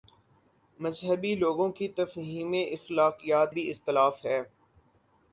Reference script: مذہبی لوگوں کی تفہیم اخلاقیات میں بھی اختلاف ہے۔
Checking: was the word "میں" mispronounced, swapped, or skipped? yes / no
yes